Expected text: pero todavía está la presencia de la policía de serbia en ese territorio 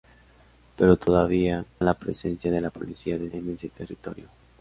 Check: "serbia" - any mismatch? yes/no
yes